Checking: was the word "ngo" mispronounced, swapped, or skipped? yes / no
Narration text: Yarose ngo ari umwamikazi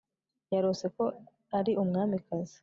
yes